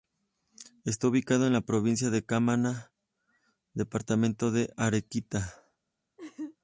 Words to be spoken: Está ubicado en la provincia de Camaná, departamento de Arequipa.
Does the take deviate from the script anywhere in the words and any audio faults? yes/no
yes